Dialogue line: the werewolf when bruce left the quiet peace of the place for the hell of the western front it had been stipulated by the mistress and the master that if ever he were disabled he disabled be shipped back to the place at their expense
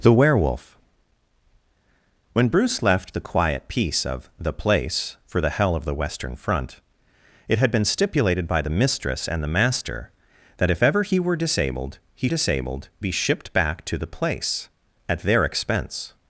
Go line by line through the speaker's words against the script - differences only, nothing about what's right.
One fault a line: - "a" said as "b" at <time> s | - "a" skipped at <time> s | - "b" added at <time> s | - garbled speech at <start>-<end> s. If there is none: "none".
none